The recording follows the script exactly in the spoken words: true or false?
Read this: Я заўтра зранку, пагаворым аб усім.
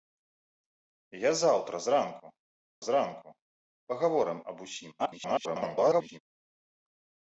false